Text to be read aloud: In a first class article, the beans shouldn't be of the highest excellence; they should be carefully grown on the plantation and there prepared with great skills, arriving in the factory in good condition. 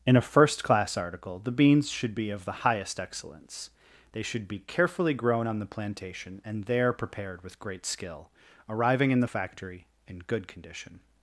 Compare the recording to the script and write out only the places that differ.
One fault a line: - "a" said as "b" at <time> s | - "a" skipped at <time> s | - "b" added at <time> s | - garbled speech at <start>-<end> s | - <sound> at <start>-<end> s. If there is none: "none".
- "shouldn't" said as "should" at 1.9 s
- "skills" said as "skill" at 7.8 s